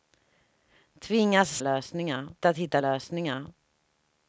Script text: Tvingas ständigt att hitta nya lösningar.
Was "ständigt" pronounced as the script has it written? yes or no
no